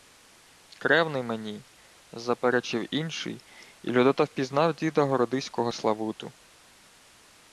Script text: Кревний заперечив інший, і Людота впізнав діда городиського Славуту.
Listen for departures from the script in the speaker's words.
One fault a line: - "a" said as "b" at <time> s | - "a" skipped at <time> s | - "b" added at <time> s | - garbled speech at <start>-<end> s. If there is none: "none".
- "мені" added at 1.2 s